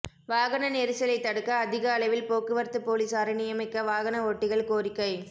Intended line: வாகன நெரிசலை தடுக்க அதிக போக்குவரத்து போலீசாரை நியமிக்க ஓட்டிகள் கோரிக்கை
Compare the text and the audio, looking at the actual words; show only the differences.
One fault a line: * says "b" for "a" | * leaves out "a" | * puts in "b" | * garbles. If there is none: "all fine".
* puts in "அளவில்"
* puts in "வாகன"